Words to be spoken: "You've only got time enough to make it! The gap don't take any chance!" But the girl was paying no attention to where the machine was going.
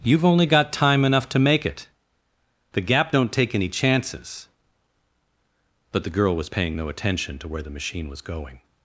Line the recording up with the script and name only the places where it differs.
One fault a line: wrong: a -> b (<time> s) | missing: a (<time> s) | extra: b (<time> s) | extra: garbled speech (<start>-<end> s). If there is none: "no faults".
wrong: chance -> chances (3.7 s)